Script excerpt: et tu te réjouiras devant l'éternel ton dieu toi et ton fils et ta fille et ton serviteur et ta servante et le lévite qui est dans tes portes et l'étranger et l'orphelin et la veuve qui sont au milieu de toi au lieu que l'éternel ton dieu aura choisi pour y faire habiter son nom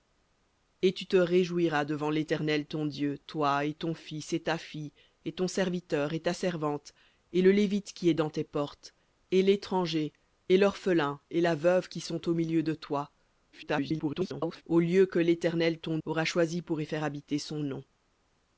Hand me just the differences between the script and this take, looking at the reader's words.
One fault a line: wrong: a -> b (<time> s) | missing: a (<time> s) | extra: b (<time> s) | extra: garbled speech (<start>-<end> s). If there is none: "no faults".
extra: garbled speech (13.5-14.6 s)
missing: dieu (16.0 s)